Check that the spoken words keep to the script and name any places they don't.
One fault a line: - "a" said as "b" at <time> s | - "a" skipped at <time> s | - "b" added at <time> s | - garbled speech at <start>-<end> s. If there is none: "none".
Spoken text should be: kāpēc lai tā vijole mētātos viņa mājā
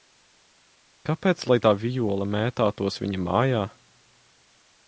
none